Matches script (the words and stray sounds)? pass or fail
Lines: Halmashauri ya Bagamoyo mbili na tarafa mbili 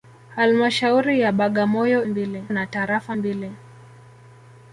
pass